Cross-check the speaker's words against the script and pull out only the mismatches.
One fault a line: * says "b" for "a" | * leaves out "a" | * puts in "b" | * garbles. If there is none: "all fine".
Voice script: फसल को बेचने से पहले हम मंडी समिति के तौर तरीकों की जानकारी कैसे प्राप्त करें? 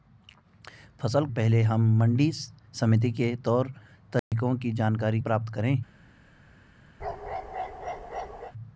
* leaves out "को बेचने से"
* leaves out "कैसे"